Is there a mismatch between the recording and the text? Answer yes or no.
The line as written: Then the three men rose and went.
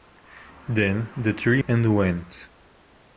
yes